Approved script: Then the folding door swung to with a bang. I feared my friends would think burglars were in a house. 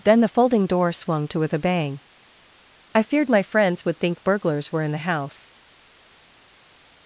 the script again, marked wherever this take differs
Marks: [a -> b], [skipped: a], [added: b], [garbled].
Then the folding door swung to with a bang. I feared my friends would think burglars were in [a -> the] house.